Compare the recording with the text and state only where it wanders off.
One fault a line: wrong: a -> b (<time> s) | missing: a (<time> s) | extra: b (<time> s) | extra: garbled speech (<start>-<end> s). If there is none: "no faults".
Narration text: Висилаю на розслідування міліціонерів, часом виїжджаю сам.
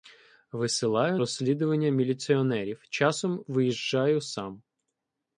missing: на (1.2 s)